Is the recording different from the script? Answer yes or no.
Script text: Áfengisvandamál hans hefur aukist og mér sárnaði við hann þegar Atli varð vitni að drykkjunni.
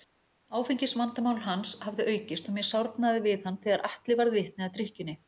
yes